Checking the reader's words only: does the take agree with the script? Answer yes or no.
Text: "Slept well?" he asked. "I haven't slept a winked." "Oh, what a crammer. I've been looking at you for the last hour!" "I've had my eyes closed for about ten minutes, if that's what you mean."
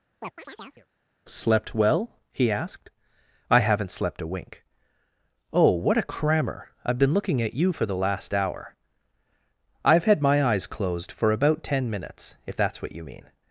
no